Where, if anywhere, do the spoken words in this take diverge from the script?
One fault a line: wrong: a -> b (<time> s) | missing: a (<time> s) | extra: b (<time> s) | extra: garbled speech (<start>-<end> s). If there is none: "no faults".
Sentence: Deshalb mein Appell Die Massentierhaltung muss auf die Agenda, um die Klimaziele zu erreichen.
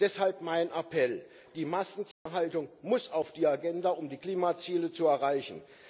no faults